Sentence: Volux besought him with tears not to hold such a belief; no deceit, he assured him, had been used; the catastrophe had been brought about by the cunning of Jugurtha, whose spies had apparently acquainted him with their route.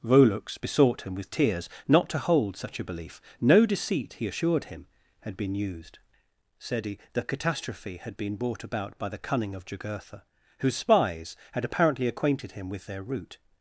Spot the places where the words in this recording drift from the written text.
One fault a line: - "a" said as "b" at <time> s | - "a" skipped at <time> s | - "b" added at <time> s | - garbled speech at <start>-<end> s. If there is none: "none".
- "said he" added at 6.6 s